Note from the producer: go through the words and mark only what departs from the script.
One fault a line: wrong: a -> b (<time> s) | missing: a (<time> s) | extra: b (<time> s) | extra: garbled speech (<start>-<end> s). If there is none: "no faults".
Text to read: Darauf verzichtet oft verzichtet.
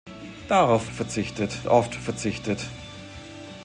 no faults